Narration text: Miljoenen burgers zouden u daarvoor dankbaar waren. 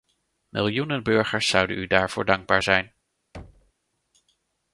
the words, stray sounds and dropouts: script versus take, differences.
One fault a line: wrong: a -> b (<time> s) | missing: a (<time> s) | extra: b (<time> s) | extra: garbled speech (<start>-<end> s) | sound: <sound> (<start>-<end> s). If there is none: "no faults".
wrong: waren -> zijn (2.6 s)
sound: thud (3.3-3.7 s)